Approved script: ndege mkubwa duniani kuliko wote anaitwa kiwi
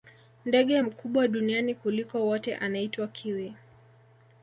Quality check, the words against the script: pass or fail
pass